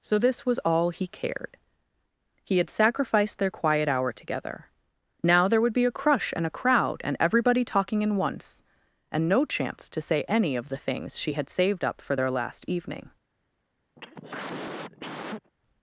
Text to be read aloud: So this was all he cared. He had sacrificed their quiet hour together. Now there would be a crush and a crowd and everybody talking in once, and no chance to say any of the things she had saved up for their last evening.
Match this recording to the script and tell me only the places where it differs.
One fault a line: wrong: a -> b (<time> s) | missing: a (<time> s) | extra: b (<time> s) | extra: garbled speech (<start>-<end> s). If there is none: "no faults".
no faults